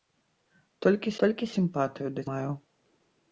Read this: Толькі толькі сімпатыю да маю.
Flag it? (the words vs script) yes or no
no